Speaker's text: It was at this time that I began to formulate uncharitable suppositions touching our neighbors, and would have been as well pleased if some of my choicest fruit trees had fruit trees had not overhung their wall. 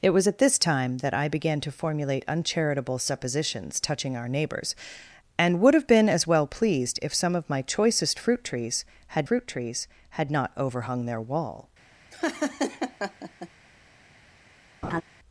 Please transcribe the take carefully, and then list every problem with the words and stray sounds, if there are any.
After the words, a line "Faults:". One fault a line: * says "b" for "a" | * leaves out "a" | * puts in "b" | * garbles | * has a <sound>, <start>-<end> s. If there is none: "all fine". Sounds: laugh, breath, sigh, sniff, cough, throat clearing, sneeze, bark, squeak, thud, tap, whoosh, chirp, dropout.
It was at this time that I began to formulate uncharitable suppositions touching our neighbors, and would have been as well pleased if some of my choicest fruit trees had fruit trees had not overhung their wall.
Faults:
* has a laugh, 12.1-13.5 s
* has a laugh, 14.8-15.0 s